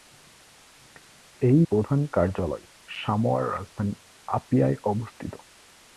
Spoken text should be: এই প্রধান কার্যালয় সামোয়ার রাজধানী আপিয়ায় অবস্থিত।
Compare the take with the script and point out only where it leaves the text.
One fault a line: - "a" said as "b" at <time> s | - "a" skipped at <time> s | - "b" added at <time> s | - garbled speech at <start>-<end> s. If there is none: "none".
none